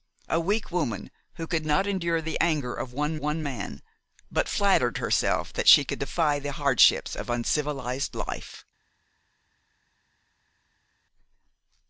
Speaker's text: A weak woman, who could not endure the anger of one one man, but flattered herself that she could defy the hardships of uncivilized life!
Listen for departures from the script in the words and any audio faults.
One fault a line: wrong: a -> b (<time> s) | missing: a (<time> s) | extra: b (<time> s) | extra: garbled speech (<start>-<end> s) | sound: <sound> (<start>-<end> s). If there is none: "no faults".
no faults